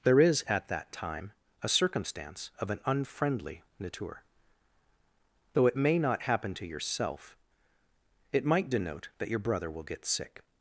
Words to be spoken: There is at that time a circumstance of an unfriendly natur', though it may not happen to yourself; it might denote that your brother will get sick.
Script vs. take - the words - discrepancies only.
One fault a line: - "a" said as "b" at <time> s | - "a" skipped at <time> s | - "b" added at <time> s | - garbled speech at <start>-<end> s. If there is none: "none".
none